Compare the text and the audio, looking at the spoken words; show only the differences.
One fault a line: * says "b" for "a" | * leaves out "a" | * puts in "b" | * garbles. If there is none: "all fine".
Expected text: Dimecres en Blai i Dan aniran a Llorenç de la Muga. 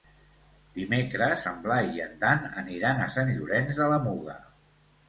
* puts in "en"
* puts in "Sant"